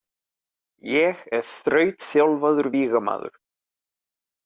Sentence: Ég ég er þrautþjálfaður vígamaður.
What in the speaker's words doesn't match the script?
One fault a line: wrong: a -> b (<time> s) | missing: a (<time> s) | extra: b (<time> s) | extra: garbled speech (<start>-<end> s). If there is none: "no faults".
missing: ég (1.2 s)